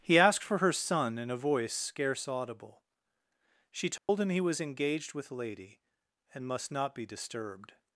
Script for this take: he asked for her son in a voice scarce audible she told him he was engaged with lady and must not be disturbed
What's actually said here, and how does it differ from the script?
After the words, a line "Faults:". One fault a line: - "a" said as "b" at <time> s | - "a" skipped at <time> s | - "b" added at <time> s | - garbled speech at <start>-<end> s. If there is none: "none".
he asked for her son in a voice scarce audible she told him he was engaged with lady and must not be disturbed
Faults:
none